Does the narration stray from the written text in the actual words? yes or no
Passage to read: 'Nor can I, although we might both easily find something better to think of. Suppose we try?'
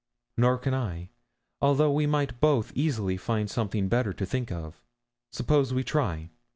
no